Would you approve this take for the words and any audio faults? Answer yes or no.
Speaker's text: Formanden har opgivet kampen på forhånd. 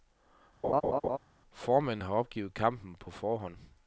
no